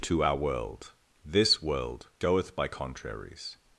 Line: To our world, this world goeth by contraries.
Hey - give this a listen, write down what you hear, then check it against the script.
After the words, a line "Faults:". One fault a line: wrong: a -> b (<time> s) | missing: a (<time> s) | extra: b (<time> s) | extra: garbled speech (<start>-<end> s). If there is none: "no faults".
To our world, this world goeth by contraries.
Faults:
no faults